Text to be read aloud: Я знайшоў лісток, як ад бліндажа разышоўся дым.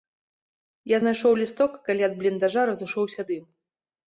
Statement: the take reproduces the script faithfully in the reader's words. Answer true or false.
false